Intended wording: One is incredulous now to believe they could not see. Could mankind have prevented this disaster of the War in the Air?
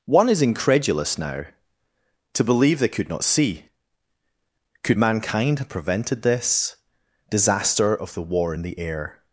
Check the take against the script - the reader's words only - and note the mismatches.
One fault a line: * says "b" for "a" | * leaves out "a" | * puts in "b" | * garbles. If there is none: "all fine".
all fine